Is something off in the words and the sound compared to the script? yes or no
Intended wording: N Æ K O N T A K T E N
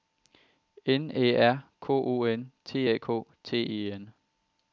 yes